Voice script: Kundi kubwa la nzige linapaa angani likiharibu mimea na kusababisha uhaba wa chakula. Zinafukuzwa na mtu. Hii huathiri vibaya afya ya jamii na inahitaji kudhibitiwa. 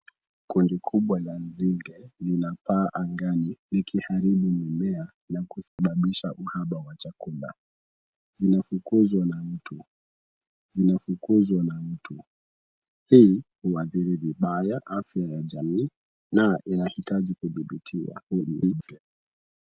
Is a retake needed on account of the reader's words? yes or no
yes